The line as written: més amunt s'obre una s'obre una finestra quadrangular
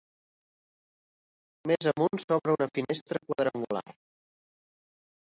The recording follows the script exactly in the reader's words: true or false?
false